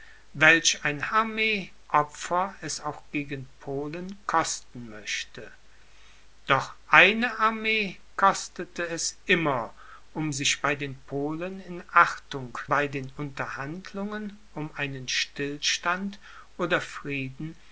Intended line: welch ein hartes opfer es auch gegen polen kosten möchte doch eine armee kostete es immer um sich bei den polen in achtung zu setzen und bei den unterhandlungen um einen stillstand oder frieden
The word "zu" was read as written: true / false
false